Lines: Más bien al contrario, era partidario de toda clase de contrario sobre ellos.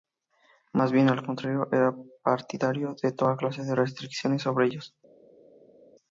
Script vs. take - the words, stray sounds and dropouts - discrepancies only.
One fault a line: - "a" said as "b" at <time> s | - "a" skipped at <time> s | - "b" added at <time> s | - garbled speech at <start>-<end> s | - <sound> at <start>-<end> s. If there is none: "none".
- "contrario" said as "restricciones" at 3.7 s